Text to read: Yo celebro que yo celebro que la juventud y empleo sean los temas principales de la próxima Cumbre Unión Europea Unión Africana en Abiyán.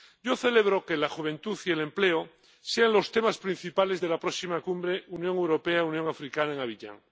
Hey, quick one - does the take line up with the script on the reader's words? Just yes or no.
no